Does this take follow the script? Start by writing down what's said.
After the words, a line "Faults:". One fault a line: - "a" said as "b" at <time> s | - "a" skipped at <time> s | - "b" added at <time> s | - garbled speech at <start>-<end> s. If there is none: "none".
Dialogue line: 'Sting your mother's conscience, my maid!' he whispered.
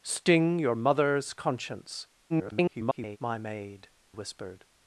'Sting your mother's conscience, [garbled] my maid!' whispered.
Faults:
- garbled speech at 2.3-3.2 s
- "he" skipped at 3.9 s